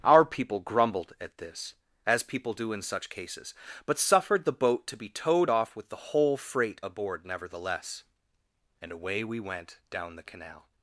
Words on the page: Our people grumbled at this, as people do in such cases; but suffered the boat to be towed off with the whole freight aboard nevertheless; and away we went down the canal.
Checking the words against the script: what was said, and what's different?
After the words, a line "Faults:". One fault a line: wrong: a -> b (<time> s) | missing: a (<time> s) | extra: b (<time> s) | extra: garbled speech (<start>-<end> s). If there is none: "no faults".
Our people grumbled at this, as people do in such cases; but suffered the boat to be towed off with the whole freight aboard nevertheless; and away we went down the canal.
Faults:
no faults